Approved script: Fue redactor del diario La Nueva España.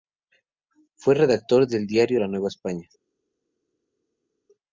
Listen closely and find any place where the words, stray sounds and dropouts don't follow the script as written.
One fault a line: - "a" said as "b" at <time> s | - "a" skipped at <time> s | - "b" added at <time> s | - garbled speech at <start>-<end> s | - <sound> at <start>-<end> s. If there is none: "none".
none